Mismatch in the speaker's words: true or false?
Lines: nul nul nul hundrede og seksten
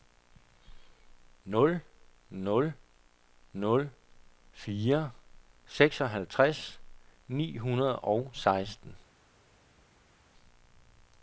true